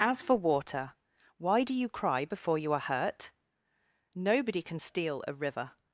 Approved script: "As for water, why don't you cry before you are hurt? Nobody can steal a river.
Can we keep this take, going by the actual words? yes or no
no